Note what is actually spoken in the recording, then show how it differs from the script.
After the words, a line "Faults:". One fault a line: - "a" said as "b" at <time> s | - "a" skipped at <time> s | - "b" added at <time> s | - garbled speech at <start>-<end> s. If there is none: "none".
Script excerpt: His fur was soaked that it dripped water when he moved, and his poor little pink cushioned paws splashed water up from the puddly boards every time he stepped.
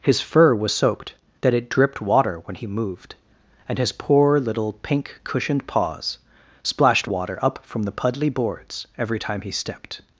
His fur was soaked that it dripped water when he moved, and his poor little pink cushioned paws splashed water up from the puddly boards every time he stepped.
Faults:
none